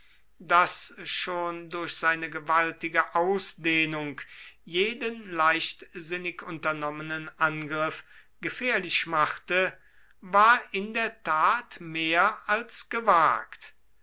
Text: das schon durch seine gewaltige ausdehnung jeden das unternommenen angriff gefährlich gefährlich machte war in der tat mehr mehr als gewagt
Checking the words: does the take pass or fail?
fail